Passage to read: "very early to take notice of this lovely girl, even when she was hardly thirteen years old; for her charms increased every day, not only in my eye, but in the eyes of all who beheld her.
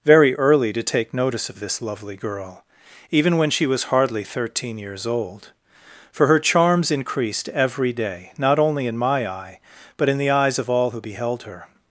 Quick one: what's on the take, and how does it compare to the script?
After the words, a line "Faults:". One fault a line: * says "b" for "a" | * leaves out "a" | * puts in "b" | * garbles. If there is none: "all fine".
"very early to take notice of this lovely girl, even when she was hardly thirteen years old; for her charms increased every day, not only in my eye, but in the eyes of all who beheld her.
Faults:
all fine